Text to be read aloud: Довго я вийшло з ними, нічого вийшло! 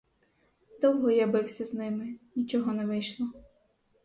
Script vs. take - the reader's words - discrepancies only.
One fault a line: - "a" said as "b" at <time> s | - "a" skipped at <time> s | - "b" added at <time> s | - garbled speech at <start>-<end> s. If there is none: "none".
- "вийшло" said as "бився" at 1.3 s
- "не" added at 2.7 s